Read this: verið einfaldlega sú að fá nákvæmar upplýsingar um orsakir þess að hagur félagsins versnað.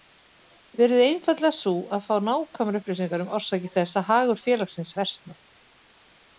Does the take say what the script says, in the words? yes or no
yes